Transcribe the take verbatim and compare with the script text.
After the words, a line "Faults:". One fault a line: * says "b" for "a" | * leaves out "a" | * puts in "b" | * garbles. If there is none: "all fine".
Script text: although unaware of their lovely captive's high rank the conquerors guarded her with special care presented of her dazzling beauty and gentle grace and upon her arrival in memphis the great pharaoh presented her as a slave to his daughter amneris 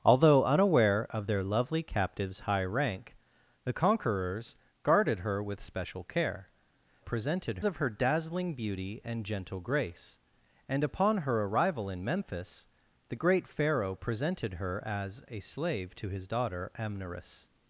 although unaware of their lovely captive's high rank the conquerors guarded her with special care presented of her dazzling beauty and gentle grace and upon her arrival in memphis the great pharaoh presented her as a slave to his daughter amneris
Faults:
all fine